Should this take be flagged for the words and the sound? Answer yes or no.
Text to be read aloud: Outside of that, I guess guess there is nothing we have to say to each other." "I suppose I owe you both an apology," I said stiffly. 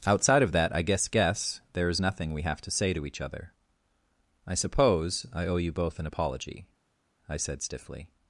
no